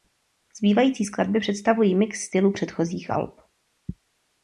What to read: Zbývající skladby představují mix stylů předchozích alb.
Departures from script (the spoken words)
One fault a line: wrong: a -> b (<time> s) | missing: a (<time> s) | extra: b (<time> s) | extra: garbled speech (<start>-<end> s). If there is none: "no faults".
no faults